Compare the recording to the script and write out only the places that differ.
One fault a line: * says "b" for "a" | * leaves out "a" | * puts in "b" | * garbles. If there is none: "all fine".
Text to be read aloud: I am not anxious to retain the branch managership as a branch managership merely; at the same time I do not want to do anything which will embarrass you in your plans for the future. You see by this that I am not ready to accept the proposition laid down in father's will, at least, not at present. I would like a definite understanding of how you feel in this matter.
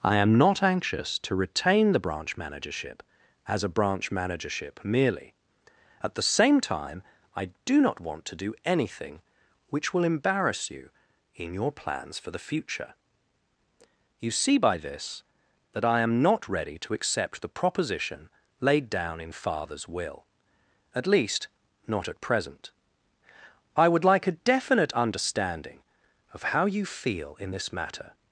all fine